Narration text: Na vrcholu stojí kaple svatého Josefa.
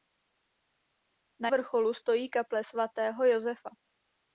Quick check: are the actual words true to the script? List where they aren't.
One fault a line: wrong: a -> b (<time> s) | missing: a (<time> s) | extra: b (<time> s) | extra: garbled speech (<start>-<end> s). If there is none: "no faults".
no faults